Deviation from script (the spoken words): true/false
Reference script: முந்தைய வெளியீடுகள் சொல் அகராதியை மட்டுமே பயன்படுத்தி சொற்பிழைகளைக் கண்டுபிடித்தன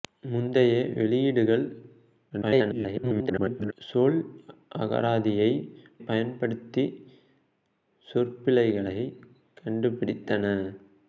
true